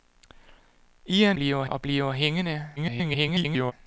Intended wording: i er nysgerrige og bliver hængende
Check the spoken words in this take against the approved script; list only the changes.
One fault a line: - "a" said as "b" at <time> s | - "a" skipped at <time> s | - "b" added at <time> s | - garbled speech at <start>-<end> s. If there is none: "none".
- "nysgerrige" said as "bliver" at 1.3 s
- garbled speech at 2.8-3.7 s